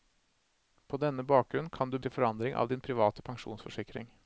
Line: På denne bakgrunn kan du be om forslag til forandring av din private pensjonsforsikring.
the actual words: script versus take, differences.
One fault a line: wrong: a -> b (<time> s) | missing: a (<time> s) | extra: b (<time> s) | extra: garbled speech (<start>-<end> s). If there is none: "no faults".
missing: be om forslag (2.0 s)